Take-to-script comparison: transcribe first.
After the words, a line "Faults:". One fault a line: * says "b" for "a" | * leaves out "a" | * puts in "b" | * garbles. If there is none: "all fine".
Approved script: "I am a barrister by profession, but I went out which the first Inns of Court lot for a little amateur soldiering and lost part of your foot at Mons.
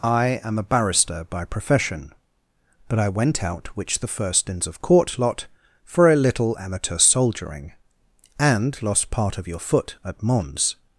"I am a barrister by profession, but I went out which the first Inns of Court lot for a little amateur soldiering and lost part of your foot at Mons.
Faults:
all fine